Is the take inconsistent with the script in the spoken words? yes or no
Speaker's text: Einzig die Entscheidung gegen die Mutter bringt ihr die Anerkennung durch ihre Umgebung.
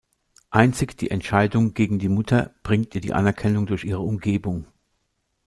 no